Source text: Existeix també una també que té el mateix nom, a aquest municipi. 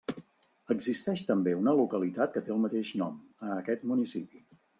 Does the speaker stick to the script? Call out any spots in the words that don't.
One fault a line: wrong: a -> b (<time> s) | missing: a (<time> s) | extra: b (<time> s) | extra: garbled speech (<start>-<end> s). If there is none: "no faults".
wrong: també -> localitat (1.8 s)